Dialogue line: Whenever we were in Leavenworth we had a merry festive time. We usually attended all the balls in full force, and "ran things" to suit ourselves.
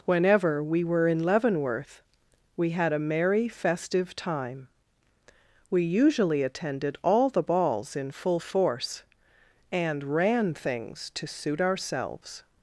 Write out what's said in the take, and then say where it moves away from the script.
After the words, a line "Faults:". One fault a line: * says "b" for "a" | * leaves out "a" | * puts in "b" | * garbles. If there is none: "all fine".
Whenever we were in Leavenworth we had a merry festive time. We usually attended all the balls in full force, and "ran things" to suit ourselves.
Faults:
all fine